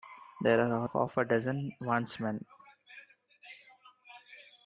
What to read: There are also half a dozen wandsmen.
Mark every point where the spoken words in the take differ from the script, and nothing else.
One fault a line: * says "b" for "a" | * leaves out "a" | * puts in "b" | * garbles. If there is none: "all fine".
* leaves out "also"